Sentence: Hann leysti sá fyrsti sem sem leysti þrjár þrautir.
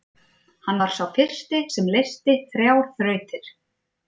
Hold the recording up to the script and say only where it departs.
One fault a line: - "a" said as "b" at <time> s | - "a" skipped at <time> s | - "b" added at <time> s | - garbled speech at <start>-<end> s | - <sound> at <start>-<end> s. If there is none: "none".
- "leysti" said as "var" at 0.8 s
- "sem" skipped at 1.9 s